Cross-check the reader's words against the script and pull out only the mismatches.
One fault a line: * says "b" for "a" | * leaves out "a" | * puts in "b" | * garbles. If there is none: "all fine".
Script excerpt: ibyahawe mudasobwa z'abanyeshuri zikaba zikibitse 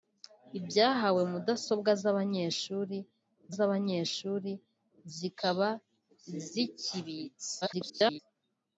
* puts in "z'abanyeshuri"
* garbles